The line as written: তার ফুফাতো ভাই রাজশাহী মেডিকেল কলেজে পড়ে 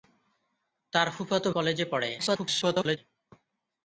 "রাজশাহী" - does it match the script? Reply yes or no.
no